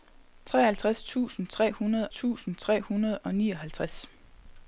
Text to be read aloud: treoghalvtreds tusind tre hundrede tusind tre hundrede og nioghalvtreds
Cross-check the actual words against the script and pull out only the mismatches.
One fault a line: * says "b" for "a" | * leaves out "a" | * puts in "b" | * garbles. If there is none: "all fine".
all fine